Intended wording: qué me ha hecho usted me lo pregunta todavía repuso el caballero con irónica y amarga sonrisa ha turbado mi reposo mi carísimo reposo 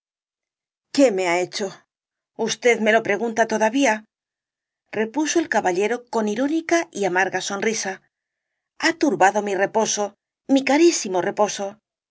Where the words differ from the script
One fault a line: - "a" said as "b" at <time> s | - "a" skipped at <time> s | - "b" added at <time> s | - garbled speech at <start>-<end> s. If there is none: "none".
none